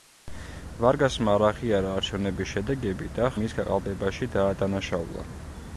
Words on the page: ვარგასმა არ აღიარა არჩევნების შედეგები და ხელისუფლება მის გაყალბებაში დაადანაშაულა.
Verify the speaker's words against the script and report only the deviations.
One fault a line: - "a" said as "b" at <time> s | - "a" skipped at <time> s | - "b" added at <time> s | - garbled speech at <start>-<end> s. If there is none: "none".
- "ხელისუფლება" skipped at 3.3 s